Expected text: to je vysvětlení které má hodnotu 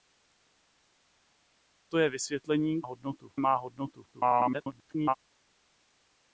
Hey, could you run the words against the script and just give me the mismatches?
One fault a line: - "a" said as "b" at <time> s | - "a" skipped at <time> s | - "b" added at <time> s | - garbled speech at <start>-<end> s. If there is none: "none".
- "které" said as "hodnotu" at 2.8 s
- garbled speech at 4.1-5.1 s